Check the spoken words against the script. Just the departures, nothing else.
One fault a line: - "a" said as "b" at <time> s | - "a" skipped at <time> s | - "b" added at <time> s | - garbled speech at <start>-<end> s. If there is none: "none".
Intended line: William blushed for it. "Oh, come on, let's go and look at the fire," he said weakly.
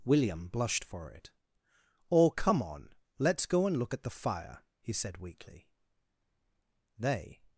- "They" added at 7.0 s